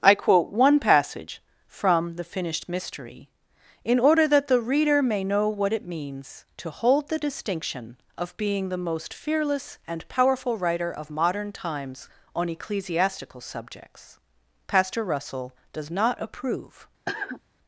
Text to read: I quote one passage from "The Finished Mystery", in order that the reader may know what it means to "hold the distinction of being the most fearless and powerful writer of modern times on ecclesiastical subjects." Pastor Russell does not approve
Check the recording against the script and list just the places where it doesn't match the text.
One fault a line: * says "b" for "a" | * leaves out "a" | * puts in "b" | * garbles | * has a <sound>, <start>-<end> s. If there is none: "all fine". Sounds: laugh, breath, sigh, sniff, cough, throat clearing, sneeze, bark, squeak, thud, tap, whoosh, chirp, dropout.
* has a cough, 17.1-17.4 s